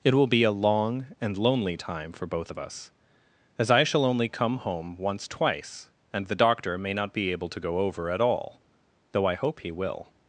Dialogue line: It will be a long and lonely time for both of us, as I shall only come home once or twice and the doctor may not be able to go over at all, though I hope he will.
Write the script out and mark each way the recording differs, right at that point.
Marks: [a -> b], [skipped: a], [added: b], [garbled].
It will be a long and lonely time for both of us, as I shall only come home once [skipped: or] twice and the doctor may not be able to go over at all, though I hope he will.